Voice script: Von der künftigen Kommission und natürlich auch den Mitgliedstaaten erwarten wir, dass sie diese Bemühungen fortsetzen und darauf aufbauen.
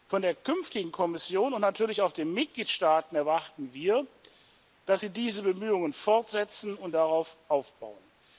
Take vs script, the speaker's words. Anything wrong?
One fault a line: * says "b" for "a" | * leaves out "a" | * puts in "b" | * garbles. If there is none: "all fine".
all fine